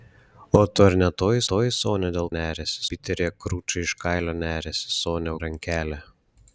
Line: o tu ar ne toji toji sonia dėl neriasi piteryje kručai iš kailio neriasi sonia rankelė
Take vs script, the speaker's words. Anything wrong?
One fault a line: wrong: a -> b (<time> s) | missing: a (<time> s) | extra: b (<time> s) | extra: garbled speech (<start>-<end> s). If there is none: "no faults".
no faults